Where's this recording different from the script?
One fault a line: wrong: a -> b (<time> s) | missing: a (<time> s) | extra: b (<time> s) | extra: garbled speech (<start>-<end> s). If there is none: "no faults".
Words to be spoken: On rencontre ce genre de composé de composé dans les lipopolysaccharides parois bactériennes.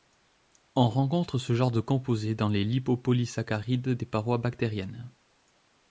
missing: de composé (2.3 s)
extra: des (3.9 s)